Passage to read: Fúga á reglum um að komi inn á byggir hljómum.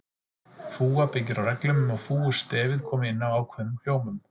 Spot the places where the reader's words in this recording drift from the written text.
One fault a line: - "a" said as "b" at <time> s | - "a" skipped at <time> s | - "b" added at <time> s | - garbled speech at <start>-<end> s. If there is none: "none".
- "byggir" added at 1.1 s
- "fúgustefið" added at 2.1 s
- "byggir" said as "ákveðnum" at 3.4 s